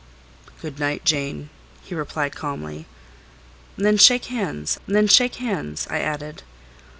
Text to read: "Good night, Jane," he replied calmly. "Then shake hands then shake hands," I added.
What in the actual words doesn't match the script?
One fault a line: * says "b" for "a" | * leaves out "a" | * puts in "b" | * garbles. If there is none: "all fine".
all fine